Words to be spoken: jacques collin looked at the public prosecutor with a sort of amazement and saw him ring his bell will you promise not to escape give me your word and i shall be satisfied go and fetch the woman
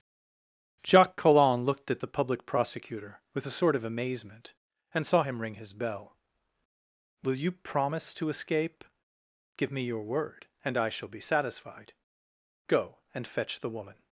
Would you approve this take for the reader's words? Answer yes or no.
no